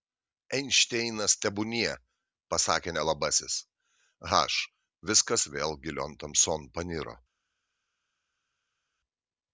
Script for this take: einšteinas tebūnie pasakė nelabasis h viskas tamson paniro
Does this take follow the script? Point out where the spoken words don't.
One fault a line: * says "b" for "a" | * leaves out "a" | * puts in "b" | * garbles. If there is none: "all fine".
* puts in "vėl gilion"